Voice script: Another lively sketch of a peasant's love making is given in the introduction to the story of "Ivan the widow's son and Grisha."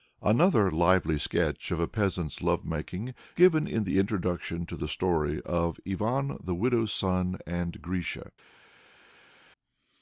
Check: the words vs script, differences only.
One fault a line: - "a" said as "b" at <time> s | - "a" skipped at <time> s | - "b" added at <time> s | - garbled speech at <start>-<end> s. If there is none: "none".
- "is" skipped at 3.1 s